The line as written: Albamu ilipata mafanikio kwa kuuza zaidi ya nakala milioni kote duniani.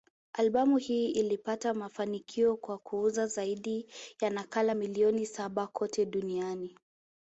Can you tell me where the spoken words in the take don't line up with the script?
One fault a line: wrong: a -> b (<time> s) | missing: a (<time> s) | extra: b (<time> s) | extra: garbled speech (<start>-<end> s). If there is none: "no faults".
extra: hii (0.8 s)
extra: saba (5.2 s)